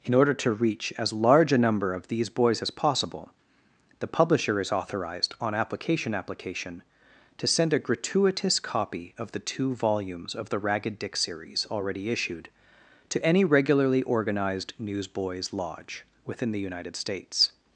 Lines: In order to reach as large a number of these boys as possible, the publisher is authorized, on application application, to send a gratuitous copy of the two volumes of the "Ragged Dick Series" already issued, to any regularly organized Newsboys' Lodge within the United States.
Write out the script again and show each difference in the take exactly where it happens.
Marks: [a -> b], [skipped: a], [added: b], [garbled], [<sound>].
In order to reach as large a number of these boys as possible, the publisher is authorized, on application application, to send a gratuitous copy of the two volumes of the "Ragged Dick Series" already issued, to any regularly organized Newsboys' Lodge within the United States.